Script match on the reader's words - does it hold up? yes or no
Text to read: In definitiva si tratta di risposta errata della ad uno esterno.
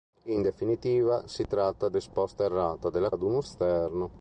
yes